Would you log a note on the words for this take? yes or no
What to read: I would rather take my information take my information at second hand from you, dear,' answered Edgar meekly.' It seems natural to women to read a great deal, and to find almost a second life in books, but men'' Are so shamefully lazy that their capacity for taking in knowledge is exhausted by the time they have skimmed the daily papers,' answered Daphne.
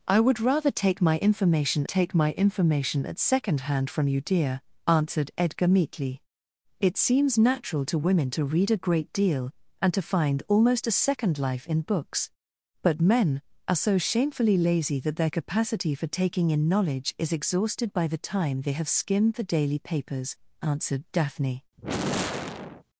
no